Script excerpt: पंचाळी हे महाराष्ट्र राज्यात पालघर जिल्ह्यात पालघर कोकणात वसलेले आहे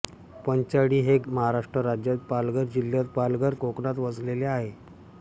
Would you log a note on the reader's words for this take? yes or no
no